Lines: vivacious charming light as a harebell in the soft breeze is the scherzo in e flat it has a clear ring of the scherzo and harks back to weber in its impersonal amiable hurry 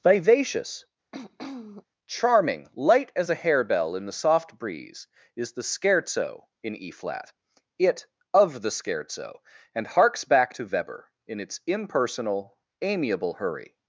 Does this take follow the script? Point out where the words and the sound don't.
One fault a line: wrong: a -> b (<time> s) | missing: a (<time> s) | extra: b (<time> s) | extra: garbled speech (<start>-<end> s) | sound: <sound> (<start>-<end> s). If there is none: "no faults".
sound: throat clearing (1.1-1.9 s)
missing: has a clear ring (8.1 s)